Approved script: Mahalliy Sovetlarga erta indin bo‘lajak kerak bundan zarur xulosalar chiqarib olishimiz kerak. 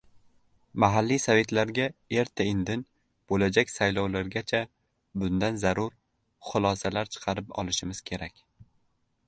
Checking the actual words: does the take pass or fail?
fail